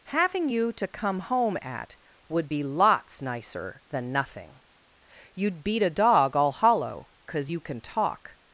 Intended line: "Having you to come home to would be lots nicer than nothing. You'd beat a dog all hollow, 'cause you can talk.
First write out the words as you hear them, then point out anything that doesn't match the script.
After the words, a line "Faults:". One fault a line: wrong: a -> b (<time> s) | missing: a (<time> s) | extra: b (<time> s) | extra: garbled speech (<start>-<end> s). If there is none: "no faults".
"Having you to come home at would be lots nicer than nothing. You'd beat a dog all hollow, 'cause you can talk.
Faults:
wrong: to -> at (1.6 s)